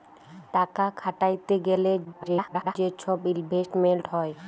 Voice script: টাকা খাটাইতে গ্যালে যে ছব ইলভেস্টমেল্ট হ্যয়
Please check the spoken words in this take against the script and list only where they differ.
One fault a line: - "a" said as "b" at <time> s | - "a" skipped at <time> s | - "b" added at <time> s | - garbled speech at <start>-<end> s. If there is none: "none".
- garbled speech at 2.0-2.8 s